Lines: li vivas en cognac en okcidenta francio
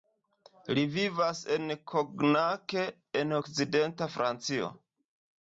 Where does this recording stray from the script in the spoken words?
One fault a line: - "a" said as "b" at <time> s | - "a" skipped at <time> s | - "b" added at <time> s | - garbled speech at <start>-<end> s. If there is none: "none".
none